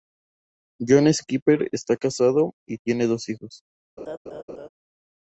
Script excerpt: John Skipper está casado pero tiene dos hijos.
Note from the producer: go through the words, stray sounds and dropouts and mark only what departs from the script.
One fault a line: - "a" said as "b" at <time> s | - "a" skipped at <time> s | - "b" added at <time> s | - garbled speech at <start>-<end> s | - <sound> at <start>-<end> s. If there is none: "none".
- "pero" said as "y" at 2.7 s
- laugh at 4.0-4.7 s